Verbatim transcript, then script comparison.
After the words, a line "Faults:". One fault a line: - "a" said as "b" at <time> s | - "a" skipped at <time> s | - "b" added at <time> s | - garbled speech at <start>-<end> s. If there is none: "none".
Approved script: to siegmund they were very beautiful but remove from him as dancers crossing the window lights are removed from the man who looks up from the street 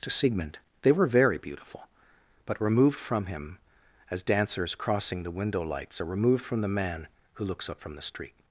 to siegmund they were very beautiful but removed from him as dancers crossing the window lights are removed from the man who looks up from the street
Faults:
- "remove" said as "removed" at 2.6 s